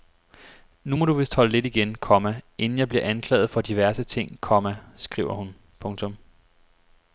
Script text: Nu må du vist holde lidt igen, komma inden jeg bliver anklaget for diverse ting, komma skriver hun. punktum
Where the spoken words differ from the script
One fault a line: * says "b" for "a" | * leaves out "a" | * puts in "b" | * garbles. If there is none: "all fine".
all fine